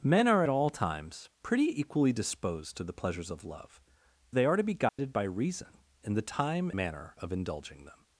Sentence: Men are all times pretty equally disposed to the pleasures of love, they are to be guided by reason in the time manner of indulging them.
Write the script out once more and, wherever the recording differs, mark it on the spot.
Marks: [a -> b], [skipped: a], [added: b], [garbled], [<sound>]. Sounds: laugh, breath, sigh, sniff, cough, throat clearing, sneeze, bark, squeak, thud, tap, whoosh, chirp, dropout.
Men are all times pretty equally disposed to the pleasures of love, they are to be guided [dropout] by reason in the time manner of indulging them.